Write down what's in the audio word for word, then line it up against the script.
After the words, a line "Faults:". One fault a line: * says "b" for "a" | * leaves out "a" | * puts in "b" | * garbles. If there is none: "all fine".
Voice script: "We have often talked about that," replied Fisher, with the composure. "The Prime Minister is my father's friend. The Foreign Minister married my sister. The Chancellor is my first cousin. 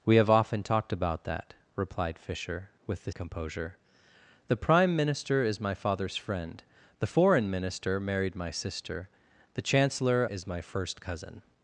"We have often talked about that," replied Fisher, with the composure. "The Prime Minister is my father's friend. The Foreign Minister married my sister. The Chancellor is my first cousin.
Faults:
all fine